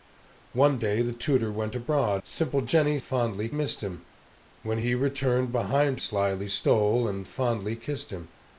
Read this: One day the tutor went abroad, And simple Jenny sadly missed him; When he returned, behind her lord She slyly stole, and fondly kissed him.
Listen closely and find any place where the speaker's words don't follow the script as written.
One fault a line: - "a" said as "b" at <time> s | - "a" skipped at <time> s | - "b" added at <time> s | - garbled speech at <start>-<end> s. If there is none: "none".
- "And" skipped at 2.2 s
- "sadly" said as "fondly" at 3.0 s
- "her lord She" skipped at 6.0 s